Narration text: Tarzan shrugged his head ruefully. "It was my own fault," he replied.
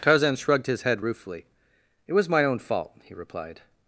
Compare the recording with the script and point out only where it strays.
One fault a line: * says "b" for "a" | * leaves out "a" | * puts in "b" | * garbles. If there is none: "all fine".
all fine